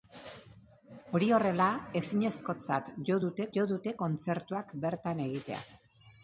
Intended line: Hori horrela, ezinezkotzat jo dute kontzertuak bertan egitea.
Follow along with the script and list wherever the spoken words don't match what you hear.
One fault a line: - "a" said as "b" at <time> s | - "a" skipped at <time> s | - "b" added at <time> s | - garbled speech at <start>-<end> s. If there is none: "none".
- "jo dute" added at 3.6 s